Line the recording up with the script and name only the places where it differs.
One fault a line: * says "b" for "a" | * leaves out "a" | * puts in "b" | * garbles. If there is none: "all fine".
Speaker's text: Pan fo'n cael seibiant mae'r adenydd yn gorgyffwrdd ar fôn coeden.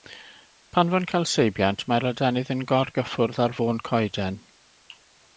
all fine